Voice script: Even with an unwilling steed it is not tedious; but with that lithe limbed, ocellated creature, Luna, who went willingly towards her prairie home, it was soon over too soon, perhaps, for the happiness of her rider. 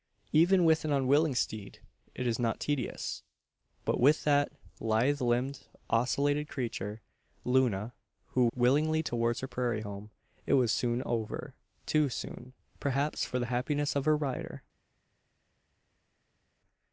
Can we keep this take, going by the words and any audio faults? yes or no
no